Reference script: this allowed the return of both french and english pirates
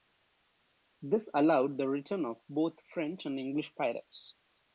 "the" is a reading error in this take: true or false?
false